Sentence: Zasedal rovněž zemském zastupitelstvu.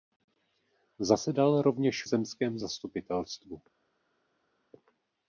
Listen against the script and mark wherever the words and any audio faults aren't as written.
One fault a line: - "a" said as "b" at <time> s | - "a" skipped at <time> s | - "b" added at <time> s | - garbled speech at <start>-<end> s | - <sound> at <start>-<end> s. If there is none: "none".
none